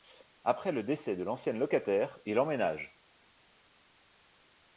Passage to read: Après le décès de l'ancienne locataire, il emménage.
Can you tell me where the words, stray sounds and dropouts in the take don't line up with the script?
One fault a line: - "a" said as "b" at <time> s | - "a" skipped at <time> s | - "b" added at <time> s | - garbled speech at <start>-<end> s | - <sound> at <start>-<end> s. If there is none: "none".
none